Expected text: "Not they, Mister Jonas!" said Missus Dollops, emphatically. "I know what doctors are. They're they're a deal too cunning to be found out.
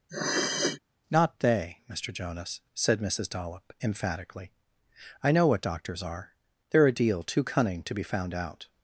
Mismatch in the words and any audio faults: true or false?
true